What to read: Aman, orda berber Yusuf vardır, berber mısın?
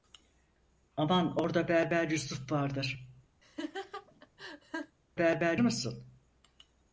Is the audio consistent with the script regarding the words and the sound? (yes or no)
no